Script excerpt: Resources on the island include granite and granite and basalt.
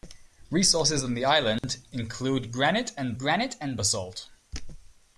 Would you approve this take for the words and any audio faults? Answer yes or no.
no